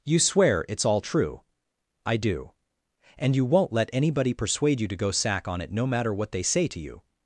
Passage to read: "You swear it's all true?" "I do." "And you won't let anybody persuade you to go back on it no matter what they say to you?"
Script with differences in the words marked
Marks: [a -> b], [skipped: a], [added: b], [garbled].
"You swear it's all true?" "I do." "And you won't let anybody persuade you to go [back -> sack] on it no matter what they say to you?"